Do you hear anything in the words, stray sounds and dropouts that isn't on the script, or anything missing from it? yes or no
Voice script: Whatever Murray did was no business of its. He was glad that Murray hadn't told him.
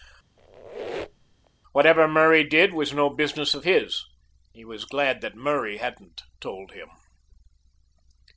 yes